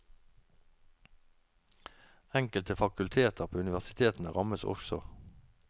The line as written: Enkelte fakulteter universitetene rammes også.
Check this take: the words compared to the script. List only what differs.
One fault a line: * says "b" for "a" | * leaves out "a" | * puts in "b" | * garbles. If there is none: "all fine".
* puts in "på"